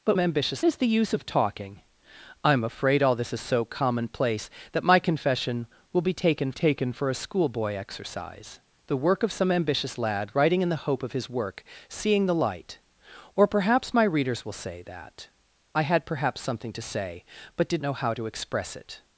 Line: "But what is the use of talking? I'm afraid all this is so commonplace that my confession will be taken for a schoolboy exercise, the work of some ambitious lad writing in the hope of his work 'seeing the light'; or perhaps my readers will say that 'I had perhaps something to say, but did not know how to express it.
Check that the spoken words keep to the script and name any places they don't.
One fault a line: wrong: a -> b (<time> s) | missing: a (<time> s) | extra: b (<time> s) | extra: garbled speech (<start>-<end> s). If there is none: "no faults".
wrong: what -> ambitious (0.2 s)
extra: taken (6.5 s)
missing: not (17.8 s)